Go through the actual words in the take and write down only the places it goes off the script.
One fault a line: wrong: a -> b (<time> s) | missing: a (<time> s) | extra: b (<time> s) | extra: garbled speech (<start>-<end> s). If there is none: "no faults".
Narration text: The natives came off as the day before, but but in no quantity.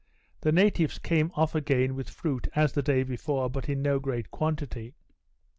extra: again with fruit (1.5 s)
missing: but (3.7 s)
extra: great (4.0 s)